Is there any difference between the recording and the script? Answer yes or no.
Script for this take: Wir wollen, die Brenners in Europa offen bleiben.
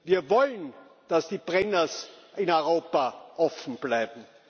yes